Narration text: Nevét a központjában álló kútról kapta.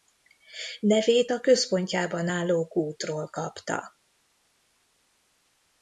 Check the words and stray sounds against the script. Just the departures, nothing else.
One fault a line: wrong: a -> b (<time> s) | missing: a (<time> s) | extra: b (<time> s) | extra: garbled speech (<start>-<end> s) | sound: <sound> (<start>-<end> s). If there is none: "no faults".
no faults